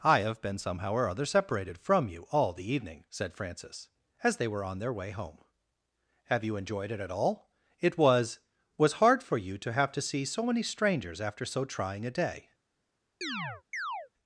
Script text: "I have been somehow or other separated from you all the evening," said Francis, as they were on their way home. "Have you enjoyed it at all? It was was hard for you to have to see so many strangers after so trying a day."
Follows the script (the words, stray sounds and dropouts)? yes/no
no